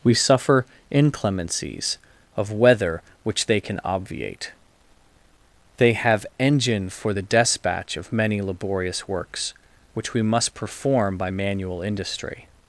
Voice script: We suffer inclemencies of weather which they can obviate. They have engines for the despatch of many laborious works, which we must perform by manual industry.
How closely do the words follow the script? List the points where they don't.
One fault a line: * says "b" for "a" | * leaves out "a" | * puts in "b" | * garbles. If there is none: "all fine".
* says "engine" for "engines"